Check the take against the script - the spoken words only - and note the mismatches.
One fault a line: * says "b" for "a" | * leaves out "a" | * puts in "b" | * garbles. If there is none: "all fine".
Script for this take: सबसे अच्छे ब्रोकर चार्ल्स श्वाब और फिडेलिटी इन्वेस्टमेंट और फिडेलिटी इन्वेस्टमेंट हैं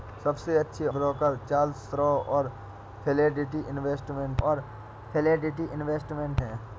all fine